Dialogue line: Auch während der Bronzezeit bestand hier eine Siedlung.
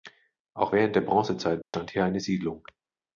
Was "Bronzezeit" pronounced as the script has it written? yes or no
yes